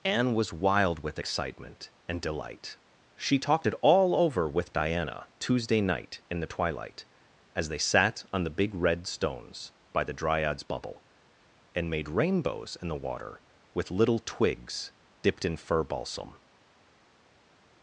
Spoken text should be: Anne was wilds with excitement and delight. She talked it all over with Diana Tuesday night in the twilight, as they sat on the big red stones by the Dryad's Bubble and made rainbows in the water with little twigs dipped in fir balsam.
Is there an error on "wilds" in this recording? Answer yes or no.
yes